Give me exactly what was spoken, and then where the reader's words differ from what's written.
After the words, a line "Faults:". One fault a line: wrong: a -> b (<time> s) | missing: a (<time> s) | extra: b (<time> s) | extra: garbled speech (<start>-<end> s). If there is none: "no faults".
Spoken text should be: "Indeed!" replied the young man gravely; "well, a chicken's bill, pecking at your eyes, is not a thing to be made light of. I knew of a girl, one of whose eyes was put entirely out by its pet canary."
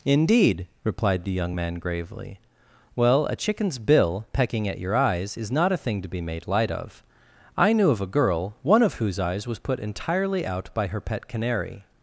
"Indeed!" replied the young man gravely; "well, a chicken's bill, pecking at your eyes, is not a thing to be made light of. I knew of a girl, one of whose eyes was put entirely out by her pet canary."
Faults:
wrong: its -> her (10.9 s)